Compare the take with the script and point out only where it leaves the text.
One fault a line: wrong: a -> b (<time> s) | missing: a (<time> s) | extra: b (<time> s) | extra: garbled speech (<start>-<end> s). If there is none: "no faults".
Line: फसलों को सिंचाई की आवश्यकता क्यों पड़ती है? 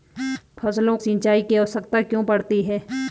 missing: को (1.0 s)